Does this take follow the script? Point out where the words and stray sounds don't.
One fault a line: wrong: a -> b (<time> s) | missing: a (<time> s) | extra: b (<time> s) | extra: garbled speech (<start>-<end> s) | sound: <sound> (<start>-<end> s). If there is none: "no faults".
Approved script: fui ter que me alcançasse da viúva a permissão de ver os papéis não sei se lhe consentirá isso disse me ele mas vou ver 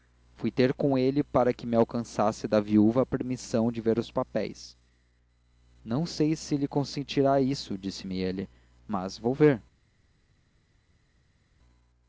extra: com ele para (0.7 s)